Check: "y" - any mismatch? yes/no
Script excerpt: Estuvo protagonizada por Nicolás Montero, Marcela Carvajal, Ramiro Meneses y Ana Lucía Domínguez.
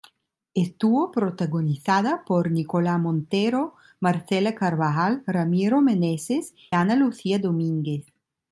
yes